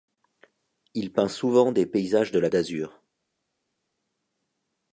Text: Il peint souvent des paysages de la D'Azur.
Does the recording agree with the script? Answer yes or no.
yes